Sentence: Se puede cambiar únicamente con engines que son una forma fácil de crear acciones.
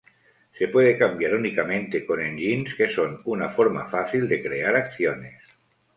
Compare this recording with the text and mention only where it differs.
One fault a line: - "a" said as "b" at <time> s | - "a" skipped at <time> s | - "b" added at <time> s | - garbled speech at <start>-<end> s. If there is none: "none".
none